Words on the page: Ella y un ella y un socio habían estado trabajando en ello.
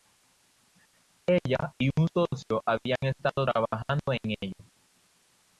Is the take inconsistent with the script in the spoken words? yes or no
yes